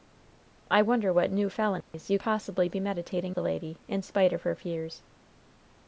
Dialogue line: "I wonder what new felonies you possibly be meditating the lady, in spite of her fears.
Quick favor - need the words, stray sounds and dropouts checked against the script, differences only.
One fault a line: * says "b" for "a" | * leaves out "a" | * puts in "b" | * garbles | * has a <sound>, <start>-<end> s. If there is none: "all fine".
* has a dropout, 1.8-1.9 s